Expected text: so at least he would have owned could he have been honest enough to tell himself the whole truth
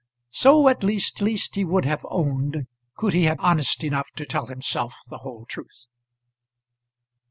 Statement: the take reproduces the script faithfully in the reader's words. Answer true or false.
false